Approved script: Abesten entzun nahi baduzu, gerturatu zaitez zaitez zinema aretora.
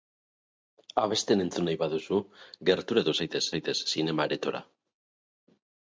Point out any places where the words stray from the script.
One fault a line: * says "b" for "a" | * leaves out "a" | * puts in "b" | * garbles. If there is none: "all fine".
all fine